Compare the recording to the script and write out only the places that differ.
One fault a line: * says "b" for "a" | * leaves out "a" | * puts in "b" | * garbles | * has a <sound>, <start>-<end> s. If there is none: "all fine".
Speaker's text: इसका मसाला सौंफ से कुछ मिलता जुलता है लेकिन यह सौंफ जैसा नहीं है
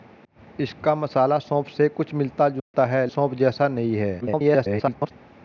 * has a dropout, 2.6-2.7 s
* leaves out "लेकिन यह"
* garbles